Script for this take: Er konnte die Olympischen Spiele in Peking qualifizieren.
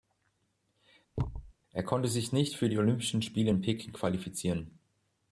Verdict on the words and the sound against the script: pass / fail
fail